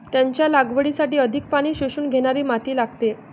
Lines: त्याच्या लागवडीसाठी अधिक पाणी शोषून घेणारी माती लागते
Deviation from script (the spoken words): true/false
false